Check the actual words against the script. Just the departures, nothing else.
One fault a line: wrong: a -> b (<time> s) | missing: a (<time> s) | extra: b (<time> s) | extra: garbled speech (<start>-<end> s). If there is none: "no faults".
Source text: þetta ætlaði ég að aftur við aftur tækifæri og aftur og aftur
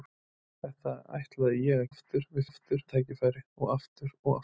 no faults